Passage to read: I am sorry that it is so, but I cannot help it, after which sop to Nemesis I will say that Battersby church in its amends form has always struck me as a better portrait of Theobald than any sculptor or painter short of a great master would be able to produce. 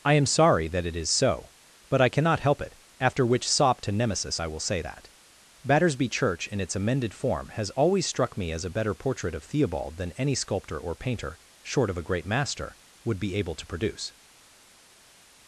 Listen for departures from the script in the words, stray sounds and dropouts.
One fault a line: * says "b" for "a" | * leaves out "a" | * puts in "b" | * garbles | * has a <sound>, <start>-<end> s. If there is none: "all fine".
* says "amended" for "amends"